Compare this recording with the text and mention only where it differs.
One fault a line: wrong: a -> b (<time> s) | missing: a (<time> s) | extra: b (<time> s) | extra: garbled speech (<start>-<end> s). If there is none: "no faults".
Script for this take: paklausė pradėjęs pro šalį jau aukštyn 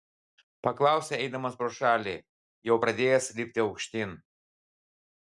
wrong: pradėjęs -> eidamas (1.2 s)
extra: pradėjęs lipti (2.8 s)